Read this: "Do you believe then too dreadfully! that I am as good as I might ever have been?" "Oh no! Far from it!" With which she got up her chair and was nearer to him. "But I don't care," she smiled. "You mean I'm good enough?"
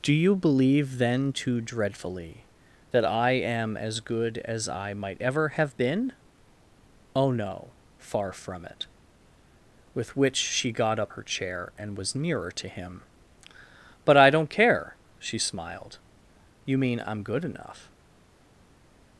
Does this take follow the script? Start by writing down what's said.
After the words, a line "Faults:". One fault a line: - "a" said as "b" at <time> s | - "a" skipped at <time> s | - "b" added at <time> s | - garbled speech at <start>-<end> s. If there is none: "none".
"Do you believe then too dreadfully! that I am as good as I might ever have been?" "Oh no! Far from it!" With which she got up her chair and was nearer to him. "But I don't care," she smiled. "You mean I'm good enough?"
Faults:
none